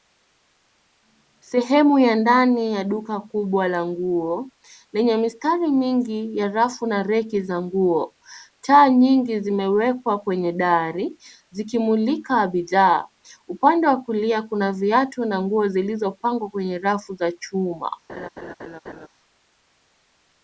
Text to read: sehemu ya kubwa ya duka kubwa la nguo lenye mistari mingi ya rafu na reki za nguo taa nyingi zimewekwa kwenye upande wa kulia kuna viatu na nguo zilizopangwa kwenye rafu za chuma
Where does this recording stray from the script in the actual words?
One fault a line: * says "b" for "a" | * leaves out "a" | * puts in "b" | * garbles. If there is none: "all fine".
* says "ndani" for "kubwa"
* puts in "dari zikimulika bidhaa"